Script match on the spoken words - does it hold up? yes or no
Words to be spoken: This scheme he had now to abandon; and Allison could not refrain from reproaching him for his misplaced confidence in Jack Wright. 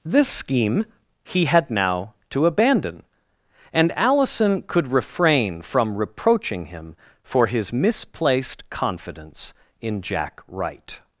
no